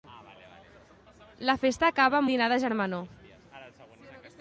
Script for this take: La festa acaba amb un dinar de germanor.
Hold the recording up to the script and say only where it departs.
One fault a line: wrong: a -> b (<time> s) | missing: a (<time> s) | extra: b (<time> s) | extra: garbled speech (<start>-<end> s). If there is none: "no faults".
missing: un (2.3 s)